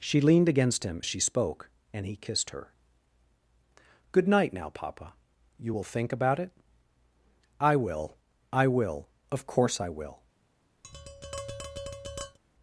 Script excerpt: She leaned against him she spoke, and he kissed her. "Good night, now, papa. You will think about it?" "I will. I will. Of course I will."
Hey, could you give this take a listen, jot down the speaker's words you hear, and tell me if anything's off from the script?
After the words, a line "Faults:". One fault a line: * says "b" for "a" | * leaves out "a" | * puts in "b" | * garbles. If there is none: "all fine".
She leaned against him she spoke, and he kissed her. "Good night, now, papa. You will think about it?" "I will. I will. Of course I will."
Faults:
all fine